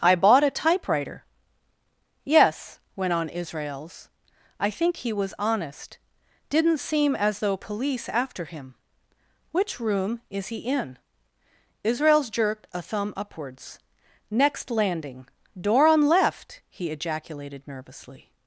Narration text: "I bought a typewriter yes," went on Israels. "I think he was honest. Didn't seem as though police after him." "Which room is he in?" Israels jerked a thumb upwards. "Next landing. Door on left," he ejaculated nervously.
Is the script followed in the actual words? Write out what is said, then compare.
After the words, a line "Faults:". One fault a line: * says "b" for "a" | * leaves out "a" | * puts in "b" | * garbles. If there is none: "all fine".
"I bought a typewriter yes," went on Israels. "I think he was honest. Didn't seem as though police after him." "Which room is he in?" Israels jerked a thumb upwards. "Next landing. Door on left," he ejaculated nervously.
Faults:
all fine